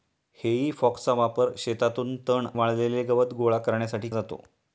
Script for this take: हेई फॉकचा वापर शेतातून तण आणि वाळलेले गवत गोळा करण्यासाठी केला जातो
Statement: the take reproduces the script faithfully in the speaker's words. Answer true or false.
false